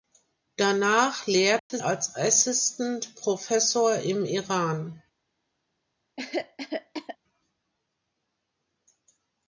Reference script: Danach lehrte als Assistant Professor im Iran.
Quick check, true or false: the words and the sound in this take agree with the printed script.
false